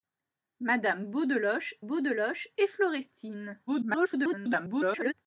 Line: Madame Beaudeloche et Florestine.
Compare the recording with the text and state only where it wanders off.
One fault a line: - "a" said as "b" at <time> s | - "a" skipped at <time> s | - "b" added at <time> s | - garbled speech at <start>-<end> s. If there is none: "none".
- "Beaudeloche" added at 1.8 s
- garbled speech at 3.7-5.1 s